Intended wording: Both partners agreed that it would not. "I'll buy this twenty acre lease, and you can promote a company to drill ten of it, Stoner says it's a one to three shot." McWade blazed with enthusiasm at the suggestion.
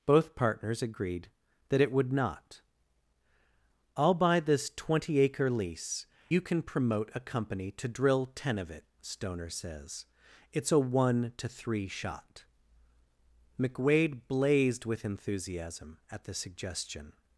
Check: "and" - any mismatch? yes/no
yes